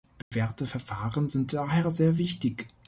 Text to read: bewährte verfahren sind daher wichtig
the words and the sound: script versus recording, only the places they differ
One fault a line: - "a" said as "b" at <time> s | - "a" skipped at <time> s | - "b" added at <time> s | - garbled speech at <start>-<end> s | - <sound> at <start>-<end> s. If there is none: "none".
- dropout at 0.2-0.3 s
- "sehr" added at 1.9 s